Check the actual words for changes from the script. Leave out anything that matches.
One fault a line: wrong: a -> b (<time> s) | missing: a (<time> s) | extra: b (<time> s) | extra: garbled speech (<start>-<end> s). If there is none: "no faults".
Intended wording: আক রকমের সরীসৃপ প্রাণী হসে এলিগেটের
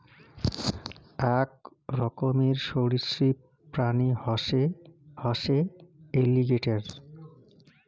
extra: হসে (5.2 s)